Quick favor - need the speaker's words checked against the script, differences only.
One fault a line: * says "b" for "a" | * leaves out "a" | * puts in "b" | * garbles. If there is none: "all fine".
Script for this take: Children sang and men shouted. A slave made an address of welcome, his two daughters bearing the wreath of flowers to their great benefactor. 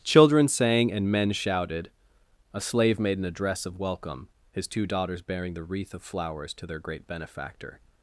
all fine